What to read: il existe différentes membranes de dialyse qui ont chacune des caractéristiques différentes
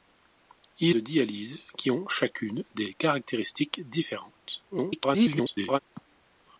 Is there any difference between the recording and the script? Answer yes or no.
yes